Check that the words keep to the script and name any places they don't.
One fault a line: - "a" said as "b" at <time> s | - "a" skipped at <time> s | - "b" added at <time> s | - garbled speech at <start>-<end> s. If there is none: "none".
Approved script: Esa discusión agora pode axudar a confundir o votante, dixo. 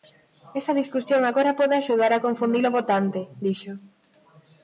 none